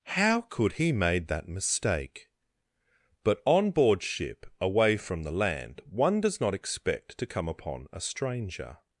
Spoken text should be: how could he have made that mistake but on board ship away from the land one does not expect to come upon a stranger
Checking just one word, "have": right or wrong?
wrong